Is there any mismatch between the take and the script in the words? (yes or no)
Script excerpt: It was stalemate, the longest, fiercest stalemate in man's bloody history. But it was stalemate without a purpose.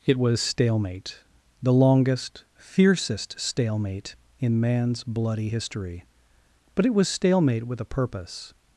yes